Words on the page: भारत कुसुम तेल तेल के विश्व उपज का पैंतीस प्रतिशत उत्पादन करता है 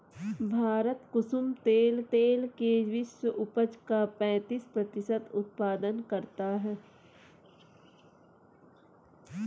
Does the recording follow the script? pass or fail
pass